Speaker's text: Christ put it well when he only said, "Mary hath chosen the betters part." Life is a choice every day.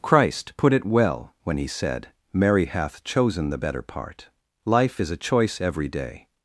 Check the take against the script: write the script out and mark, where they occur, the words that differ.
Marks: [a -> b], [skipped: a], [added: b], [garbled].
Christ put it well when he [skipped: only] said, "Mary hath chosen the [betters -> better] part." Life is a choice every day.